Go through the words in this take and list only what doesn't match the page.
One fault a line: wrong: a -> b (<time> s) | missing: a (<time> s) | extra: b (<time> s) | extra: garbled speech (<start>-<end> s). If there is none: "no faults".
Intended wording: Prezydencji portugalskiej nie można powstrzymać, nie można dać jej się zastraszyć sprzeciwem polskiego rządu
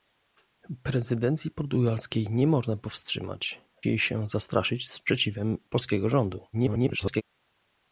missing: nie można dać (3.6 s)
extra: garbled speech (6.5-7.2 s)